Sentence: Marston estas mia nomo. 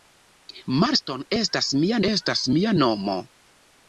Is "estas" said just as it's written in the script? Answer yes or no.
yes